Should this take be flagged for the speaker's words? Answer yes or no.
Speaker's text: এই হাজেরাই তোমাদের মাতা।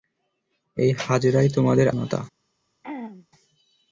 no